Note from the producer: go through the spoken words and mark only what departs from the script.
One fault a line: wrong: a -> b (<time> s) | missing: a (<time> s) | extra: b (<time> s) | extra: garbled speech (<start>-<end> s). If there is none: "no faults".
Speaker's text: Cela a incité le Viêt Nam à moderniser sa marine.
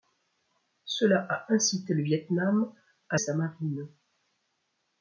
missing: moderniser (3.2 s)